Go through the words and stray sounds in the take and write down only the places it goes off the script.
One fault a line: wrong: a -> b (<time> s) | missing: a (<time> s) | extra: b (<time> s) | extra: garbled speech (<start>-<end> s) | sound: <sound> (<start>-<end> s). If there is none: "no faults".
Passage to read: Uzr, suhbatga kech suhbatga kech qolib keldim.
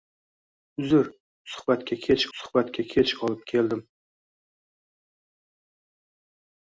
no faults